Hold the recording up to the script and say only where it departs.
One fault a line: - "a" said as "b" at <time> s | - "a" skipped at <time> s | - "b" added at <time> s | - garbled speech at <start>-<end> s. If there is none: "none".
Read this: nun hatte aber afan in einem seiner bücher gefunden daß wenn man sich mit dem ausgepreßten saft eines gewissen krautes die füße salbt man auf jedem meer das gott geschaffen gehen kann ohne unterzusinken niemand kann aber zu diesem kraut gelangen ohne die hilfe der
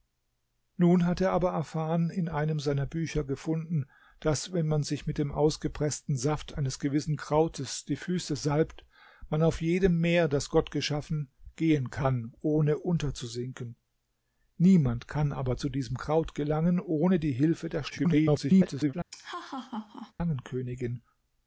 - garbled speech at 17.9-18.9 s